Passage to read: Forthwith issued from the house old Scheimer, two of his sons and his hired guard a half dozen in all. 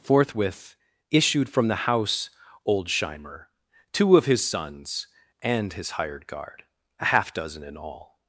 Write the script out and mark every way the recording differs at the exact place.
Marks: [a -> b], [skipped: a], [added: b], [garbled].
Forthwith issued from the house old Scheimer, two of his sons and his hired guard a half dozen in all.